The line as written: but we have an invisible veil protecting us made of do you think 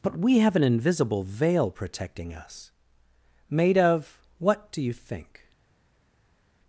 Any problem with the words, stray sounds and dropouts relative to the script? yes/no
yes